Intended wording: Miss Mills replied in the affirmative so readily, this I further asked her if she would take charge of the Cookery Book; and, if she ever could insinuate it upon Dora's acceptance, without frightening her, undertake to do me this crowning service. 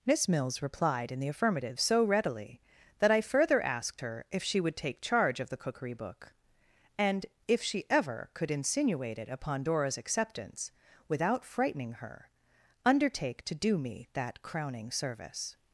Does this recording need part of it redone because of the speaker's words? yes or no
yes